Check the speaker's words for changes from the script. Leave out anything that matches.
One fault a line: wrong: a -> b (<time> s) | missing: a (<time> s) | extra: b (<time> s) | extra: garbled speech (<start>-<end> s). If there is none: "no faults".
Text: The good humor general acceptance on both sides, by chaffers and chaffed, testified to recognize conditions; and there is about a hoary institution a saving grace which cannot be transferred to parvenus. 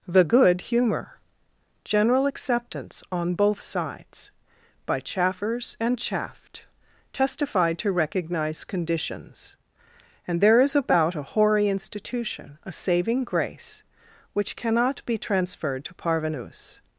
no faults